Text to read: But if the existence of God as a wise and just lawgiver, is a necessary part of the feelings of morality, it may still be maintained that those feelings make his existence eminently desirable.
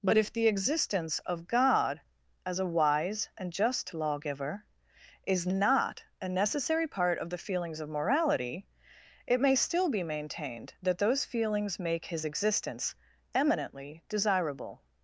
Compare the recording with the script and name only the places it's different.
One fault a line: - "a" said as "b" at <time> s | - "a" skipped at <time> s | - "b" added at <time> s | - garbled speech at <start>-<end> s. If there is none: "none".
- "not" added at 5.5 s